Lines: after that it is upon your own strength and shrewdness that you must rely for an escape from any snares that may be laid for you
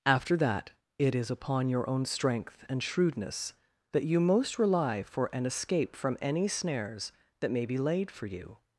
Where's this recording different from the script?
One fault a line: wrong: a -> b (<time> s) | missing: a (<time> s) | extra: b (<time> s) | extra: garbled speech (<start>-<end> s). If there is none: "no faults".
wrong: must -> most (4.2 s)